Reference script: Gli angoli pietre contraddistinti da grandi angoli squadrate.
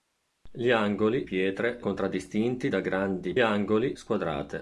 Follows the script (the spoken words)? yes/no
yes